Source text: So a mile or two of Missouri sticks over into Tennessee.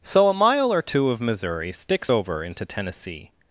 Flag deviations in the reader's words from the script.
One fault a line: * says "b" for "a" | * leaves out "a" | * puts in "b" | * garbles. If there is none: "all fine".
all fine